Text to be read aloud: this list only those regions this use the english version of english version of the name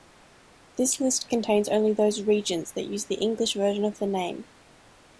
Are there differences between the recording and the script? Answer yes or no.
yes